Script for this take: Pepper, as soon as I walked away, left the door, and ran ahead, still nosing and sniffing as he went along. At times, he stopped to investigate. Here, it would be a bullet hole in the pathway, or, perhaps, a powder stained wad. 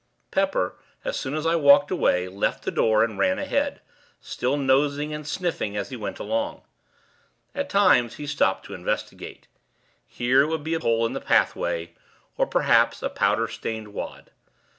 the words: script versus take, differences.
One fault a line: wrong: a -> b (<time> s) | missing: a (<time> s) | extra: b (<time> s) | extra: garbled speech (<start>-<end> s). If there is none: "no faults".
missing: bullet (10.8 s)